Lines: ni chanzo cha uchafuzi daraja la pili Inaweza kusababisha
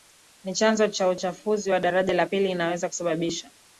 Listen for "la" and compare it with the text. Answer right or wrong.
right